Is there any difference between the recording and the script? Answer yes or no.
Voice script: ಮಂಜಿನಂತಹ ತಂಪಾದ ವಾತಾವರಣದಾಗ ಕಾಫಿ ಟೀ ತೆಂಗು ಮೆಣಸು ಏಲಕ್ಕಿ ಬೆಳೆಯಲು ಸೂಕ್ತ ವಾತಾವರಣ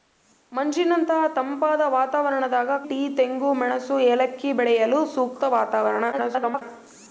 yes